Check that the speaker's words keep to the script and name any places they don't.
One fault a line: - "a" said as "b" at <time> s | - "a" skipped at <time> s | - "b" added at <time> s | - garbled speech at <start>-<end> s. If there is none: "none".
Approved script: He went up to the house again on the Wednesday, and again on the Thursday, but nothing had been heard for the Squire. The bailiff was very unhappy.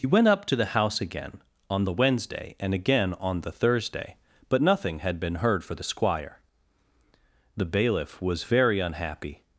none